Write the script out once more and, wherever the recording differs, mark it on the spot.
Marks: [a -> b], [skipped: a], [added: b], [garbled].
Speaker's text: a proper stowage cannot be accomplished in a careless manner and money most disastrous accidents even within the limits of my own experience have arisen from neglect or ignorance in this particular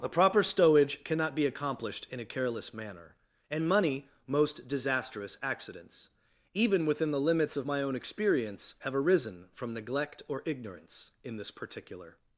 a proper stowage cannot be accomplished in a careless manner and money most disastrous accidents even within the limits of my own experience have arisen from neglect or ignorance in this particular